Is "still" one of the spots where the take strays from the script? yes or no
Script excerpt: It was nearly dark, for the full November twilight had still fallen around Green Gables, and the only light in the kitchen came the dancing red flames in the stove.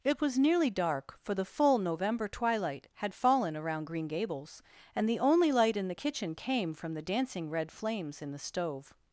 yes